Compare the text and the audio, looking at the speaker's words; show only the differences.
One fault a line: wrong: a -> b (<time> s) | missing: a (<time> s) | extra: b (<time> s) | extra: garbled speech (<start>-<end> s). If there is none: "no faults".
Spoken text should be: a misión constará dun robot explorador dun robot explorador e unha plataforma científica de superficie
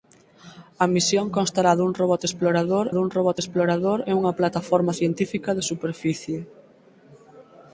no faults